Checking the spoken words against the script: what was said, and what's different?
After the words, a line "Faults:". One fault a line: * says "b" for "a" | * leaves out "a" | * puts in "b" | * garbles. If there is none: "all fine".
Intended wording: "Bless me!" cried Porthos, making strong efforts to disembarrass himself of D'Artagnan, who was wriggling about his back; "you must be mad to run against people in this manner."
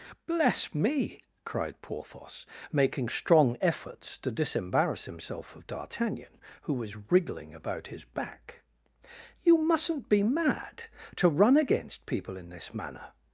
"Bless me!" cried Porthos, making strong efforts to disembarrass himself of D'Artagnan, who was wriggling about his back; "you mustn't be mad to run against people in this manner."
Faults:
* says "mustn't" for "must"